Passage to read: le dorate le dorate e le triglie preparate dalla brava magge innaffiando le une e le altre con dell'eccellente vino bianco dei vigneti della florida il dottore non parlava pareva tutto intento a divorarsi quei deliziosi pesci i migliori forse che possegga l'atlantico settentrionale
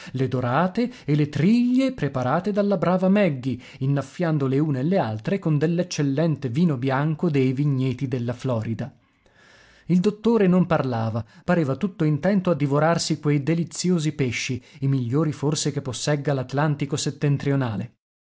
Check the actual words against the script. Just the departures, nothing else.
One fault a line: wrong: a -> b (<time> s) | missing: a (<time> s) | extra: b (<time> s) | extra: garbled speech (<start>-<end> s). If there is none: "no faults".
missing: le dorate (0.9 s)